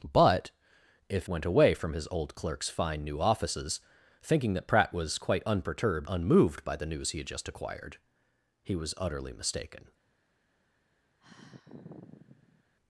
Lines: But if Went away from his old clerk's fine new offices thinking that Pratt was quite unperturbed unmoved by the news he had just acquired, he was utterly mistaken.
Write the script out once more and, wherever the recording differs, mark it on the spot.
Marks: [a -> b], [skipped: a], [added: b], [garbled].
But if Went away from his old clerk's fine new offices thinking that Pratt was quite unperturbed unmoved by the news he had just acquired, he was utterly mistaken.